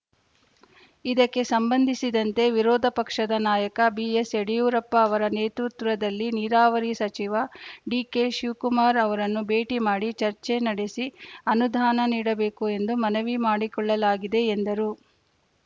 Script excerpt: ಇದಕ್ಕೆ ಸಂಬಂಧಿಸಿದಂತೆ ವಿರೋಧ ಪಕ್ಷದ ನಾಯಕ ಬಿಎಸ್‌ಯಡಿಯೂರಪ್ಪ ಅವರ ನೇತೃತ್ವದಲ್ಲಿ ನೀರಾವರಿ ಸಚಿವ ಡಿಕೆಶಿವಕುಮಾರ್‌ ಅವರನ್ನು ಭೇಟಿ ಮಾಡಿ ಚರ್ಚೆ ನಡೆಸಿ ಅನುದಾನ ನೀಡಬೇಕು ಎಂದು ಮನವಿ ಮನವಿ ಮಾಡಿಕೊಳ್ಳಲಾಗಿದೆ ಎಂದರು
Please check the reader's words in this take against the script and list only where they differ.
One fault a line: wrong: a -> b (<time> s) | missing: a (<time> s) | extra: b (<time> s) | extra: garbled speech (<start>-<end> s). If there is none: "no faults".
missing: ಮನವಿ (13.3 s)